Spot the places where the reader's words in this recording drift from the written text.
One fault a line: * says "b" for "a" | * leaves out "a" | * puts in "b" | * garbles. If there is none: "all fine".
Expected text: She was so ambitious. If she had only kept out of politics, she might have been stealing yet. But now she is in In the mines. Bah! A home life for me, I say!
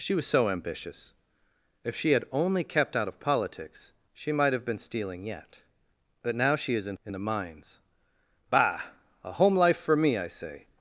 all fine